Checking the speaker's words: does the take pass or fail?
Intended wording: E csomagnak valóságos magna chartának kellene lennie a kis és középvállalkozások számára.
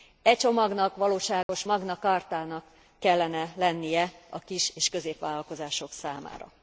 pass